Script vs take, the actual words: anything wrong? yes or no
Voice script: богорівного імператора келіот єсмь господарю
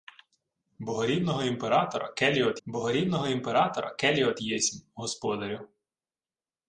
yes